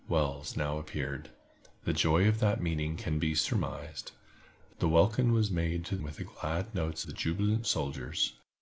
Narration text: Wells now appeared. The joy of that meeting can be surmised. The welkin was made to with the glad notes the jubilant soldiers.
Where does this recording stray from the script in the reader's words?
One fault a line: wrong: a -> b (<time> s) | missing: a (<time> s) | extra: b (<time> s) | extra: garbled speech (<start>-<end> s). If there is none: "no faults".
no faults